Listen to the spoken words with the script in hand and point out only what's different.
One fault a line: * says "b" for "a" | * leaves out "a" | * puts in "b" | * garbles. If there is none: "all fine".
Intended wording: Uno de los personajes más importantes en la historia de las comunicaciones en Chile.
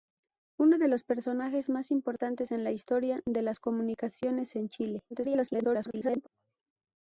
* garbles